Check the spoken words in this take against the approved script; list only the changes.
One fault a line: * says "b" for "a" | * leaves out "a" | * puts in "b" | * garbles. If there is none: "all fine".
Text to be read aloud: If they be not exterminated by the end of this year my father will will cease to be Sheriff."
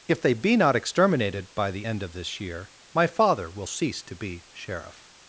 * leaves out "will"